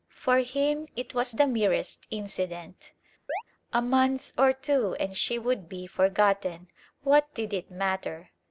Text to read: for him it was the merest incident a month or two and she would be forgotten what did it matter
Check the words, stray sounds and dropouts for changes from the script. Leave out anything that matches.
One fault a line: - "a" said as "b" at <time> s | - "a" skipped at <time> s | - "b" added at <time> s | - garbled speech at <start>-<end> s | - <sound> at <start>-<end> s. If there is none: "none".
- chirp at 3.3-3.4 s